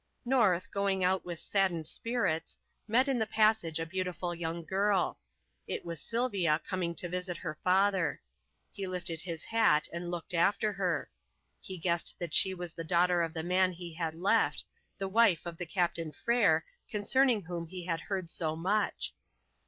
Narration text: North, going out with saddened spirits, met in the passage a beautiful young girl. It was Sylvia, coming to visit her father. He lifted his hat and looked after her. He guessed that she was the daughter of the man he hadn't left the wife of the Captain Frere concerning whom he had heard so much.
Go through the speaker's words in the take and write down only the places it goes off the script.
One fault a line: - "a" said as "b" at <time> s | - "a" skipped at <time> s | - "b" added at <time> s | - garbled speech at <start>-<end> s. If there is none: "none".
- "hadn't" said as "had" at 13.9 s